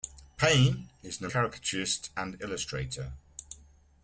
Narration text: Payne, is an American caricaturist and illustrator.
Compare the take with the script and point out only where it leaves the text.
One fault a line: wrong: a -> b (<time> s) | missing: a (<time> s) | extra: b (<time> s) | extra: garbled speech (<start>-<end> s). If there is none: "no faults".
missing: American (1.3 s)